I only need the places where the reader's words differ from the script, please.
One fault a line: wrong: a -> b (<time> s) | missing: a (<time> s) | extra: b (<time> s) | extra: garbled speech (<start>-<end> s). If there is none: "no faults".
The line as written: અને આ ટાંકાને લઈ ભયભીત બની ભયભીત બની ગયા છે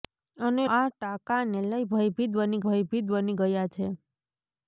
no faults